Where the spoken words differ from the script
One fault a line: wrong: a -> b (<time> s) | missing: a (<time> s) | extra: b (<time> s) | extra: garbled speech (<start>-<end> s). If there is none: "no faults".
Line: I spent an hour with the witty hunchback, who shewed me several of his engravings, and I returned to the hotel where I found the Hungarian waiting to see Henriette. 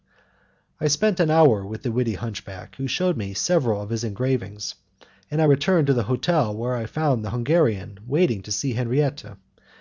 no faults